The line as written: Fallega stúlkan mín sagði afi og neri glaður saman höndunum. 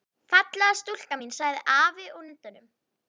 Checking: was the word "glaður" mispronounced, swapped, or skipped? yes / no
yes